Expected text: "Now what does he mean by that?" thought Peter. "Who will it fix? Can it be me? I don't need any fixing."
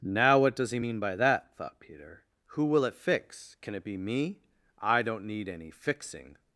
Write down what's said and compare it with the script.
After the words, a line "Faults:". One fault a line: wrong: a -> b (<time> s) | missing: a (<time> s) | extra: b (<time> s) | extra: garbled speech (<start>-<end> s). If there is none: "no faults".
"Now what does he mean by that?" thought Peter. "Who will it fix? Can it be me? I don't need any fixing."
Faults:
no faults